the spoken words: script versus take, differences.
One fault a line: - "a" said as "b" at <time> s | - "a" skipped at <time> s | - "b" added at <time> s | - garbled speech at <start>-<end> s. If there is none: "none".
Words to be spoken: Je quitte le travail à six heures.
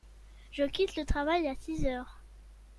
none